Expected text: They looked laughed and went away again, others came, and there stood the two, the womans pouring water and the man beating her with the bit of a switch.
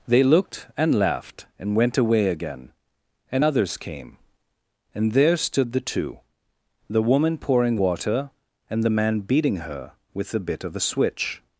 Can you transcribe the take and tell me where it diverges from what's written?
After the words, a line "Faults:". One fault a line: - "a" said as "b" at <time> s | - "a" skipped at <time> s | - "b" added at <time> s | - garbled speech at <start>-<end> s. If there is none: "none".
They looked and laughed and went away again, and others came, and there stood the two, the woman pouring water and the man beating her with the bit of a switch.
Faults:
- "and" added at 0.8 s
- "and" added at 3.3 s
- "womans" said as "woman" at 7.0 s